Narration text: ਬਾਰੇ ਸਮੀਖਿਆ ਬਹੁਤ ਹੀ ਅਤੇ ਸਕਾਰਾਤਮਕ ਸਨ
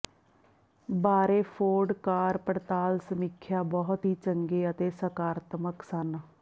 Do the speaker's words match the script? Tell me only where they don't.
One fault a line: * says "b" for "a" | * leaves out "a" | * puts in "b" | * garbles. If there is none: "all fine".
* puts in "ਫੋਰਡ ਕਾਰ ਪੜਤਾਲ"
* puts in "ਚੰਗੇ"